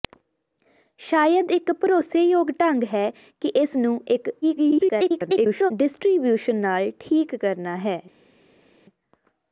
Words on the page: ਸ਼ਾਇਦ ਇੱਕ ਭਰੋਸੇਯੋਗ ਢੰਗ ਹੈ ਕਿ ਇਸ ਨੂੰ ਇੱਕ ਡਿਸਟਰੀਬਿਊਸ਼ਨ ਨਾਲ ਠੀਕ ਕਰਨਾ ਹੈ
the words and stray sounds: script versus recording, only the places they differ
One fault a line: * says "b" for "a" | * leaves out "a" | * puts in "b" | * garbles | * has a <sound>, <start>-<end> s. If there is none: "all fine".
* garbles